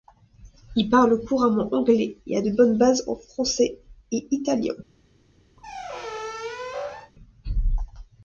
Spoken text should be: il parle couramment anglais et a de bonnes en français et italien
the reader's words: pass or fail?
fail